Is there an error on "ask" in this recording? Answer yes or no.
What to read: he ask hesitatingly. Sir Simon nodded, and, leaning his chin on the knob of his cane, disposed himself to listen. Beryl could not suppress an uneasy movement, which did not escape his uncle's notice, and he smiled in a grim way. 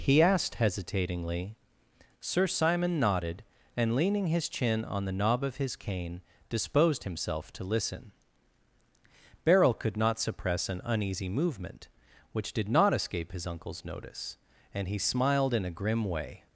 yes